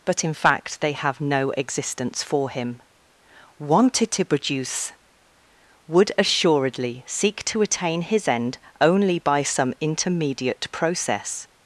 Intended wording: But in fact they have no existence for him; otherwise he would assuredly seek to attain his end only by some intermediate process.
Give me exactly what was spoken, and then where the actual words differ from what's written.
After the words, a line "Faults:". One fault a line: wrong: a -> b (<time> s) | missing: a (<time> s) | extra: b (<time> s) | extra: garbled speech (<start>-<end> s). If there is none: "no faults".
But in fact they have no existence for him; wanted to produce would assuredly seek to attain his end only by some intermediate process.
Faults:
wrong: otherwise he -> wanted to produce (3.6 s)